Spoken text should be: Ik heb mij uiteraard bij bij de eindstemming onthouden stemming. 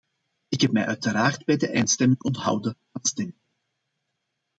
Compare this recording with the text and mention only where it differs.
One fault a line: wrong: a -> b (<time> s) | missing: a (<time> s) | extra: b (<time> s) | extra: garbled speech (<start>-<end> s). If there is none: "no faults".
missing: bij (1.6 s)
extra: van (2.9 s)